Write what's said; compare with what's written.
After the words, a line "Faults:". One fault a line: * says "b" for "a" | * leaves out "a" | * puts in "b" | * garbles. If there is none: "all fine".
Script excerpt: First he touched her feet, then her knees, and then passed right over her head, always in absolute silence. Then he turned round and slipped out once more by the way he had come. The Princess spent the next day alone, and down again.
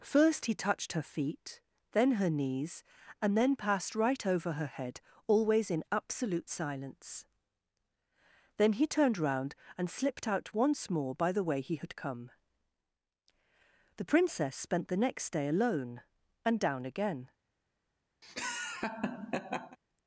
First he touched her feet, then her knees, and then passed right over her head, always in absolute silence. Then he turned round and slipped out once more by the way he had come. The Princess spent the next day alone, and down again.
Faults:
all fine